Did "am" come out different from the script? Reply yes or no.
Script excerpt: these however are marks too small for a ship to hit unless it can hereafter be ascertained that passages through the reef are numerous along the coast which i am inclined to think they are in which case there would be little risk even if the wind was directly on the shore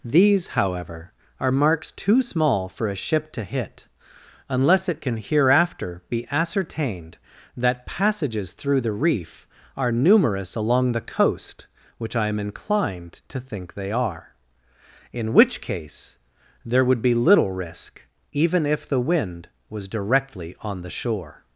no